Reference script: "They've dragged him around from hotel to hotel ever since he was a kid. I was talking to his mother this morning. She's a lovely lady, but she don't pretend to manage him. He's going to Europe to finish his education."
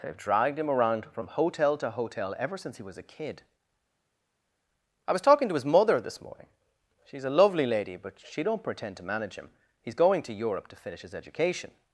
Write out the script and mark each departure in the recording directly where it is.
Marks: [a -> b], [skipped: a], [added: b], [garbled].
"They've dragged him around from hotel to hotel ever since he was a kid. I was talking to his mother this morning. She's a lovely lady, but she don't pretend to manage him. He's going to Europe to finish his education."